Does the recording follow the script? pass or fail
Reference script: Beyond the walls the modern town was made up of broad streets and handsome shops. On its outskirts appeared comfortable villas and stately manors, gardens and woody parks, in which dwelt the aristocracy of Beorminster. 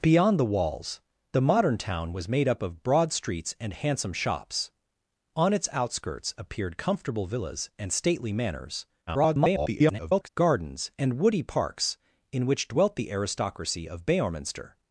fail